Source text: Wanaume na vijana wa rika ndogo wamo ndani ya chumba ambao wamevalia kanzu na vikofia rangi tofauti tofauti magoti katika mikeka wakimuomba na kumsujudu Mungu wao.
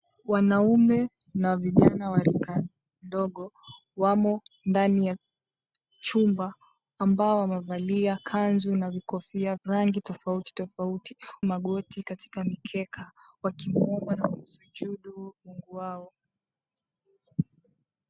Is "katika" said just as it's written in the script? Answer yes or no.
yes